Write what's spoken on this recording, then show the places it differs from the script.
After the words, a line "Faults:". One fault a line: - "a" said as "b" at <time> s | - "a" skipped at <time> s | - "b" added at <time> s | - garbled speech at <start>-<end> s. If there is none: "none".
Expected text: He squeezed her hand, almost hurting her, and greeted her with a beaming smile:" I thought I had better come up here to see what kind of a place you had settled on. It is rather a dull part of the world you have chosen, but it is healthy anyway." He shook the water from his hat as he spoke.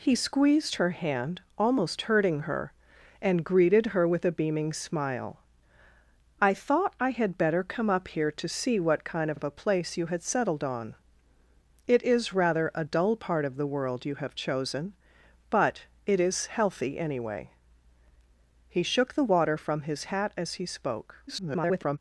He squeezed her hand, almost hurting her, and greeted her with a beaming smile:" I thought I had better come up here to see what kind of of a place you had settled on. It is rather a dull part of the world you have chosen, but it is healthy anyway." He shook the water from his hat as he spoke. [garbled]
Faults:
- "of" added at 9.3 s
- garbled speech at 21.3-22.0 s